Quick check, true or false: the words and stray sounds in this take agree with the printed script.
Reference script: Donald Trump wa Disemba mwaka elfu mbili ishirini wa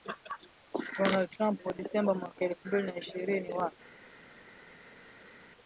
false